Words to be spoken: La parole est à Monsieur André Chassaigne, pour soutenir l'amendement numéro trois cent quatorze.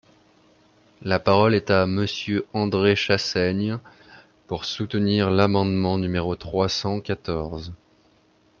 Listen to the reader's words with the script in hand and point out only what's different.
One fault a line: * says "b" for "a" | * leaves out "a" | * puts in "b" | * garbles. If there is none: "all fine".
all fine